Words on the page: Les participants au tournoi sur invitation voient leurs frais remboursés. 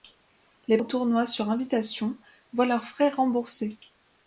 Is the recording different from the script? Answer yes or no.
yes